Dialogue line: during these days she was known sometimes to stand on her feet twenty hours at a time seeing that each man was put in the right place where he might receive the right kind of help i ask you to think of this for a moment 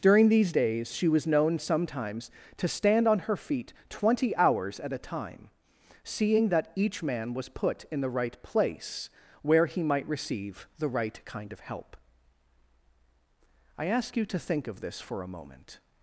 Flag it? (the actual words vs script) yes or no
no